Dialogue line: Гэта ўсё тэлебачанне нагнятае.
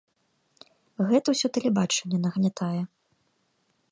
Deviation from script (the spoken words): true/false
false